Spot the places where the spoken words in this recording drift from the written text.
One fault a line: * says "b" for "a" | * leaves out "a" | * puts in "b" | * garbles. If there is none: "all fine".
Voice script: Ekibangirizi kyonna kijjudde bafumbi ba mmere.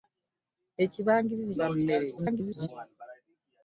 * leaves out "kyonna kijjudde bafumbi"
* garbles